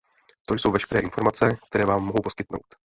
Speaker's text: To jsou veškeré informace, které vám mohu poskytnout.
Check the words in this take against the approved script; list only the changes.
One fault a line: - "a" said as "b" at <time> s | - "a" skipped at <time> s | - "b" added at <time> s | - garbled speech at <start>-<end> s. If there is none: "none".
none